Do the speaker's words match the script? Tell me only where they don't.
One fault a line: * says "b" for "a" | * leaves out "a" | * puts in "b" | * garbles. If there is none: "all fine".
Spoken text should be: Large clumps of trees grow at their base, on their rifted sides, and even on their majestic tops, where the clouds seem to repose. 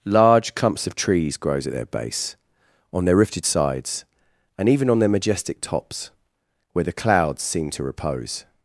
* says "grows" for "grow"